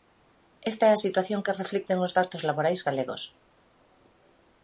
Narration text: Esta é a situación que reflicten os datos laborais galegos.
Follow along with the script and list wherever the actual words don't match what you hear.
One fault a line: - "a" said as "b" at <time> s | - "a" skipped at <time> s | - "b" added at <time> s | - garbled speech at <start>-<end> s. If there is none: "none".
none